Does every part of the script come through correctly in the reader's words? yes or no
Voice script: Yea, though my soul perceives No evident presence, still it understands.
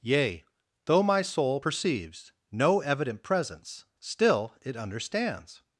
yes